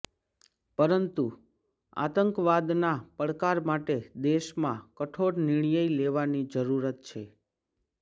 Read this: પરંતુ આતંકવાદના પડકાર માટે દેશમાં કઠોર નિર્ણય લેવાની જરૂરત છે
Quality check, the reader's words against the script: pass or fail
pass